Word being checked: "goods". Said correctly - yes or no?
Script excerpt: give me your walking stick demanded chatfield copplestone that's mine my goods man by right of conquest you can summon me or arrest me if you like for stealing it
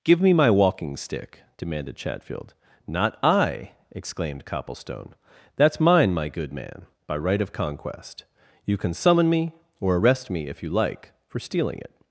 no